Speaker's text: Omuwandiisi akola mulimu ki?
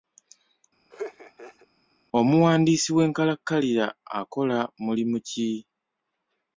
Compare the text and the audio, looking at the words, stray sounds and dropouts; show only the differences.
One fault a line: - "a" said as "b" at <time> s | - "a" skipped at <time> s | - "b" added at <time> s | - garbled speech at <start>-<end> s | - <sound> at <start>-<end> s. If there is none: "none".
- laugh at 0.9-1.7 s
- "w'enkalakkalira" added at 3.0 s